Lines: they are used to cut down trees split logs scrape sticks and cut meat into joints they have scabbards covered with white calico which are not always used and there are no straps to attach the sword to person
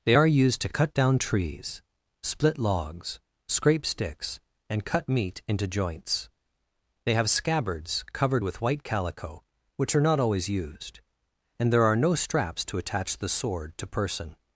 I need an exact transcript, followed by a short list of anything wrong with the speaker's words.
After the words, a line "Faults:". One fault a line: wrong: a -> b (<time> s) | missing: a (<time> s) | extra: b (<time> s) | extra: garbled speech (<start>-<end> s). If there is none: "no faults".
they are used to cut down trees split logs scrape sticks and cut meat into joints they have scabbards covered with white calico which are not always used and there are no straps to attach the sword to person
Faults:
no faults